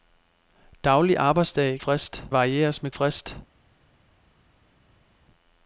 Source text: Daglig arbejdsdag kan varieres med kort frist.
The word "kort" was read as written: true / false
false